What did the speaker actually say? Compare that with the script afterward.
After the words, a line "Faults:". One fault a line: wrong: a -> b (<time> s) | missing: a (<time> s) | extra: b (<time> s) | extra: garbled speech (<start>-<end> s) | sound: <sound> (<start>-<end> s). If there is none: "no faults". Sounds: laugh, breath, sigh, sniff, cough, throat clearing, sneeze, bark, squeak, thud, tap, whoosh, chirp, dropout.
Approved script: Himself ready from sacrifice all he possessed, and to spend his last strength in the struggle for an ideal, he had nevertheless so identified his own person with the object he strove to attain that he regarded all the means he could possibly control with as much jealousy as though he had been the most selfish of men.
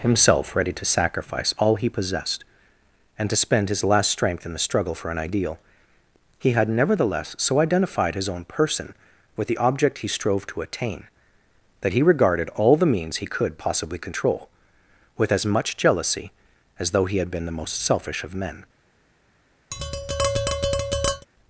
Himself ready to sacrifice all he possessed, and to spend his last strength in the struggle for an ideal, he had nevertheless so identified his own person with the object he strove to attain that he regarded all the means he could possibly control with as much jealousy as though he had been the most selfish of men.
Faults:
wrong: from -> to (0.7 s)
sound: tap (19.7-21.3 s)